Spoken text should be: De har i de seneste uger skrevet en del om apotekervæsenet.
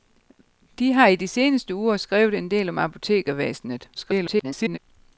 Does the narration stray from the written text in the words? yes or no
yes